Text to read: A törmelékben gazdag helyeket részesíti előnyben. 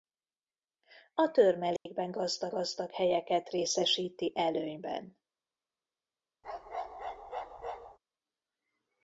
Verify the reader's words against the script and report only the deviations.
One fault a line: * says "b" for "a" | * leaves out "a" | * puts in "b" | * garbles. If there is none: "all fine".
* puts in "gazdag"